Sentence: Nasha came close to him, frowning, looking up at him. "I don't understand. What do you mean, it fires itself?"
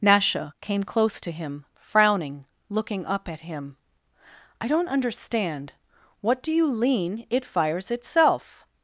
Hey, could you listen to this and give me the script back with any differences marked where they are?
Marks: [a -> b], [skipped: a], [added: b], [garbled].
Nasha came close to him, frowning, looking up at him. "I don't understand. What do you [mean, -> lean] it fires itself?"